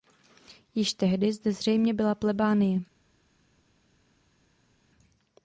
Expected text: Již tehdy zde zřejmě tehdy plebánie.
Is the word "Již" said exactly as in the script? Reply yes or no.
yes